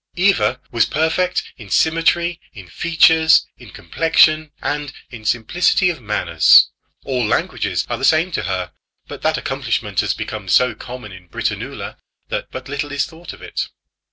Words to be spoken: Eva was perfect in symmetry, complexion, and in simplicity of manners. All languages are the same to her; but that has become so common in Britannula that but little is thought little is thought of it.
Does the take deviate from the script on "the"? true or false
false